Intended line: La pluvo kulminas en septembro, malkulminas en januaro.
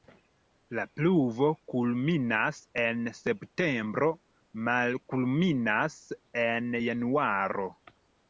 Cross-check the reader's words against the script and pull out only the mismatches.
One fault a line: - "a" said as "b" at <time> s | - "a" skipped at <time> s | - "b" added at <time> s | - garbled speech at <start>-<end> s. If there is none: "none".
none